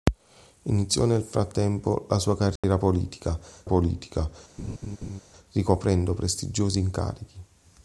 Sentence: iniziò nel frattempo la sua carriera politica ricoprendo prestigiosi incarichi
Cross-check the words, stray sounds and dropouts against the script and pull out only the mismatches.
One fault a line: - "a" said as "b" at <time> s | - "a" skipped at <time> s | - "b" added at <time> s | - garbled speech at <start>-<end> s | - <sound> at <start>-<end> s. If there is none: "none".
- dropout at 2.6-2.6 s
- "politica" added at 3.6 s
- laugh at 4.6-5.2 s